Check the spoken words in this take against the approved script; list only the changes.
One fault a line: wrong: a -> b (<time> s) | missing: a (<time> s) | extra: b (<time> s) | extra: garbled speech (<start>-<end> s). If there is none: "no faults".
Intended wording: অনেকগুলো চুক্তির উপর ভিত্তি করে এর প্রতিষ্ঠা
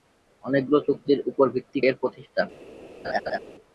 missing: করে (1.8 s)